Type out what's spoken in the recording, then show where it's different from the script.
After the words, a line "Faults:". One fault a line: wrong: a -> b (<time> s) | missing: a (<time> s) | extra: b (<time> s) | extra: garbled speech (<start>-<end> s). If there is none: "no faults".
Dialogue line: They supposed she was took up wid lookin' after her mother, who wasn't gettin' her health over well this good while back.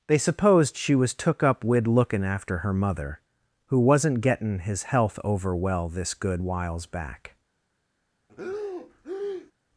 They supposed she was took up wid lookin' after her mother, who wasn't gettin' his health over well this good whiles back.
Faults:
wrong: her -> his (4.6 s)
wrong: while -> whiles (6.4 s)